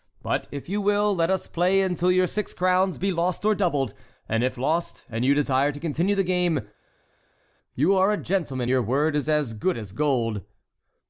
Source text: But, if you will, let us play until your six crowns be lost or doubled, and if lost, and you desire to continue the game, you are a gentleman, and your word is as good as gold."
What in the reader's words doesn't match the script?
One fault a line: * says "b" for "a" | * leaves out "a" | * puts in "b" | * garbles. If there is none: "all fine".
* leaves out "and"